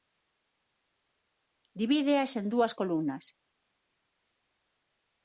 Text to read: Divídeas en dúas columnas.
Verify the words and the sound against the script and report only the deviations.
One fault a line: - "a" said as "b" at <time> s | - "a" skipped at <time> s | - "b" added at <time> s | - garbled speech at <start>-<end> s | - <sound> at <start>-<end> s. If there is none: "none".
none